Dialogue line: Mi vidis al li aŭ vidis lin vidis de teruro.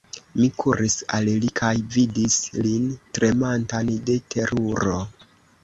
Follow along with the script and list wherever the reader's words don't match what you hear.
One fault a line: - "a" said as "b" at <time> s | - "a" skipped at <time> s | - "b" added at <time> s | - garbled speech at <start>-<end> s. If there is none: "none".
- "vidis" said as "kuris" at 0.6 s
- "aŭ" said as "kaj" at 1.6 s
- "vidis" said as "tremantan" at 3.2 s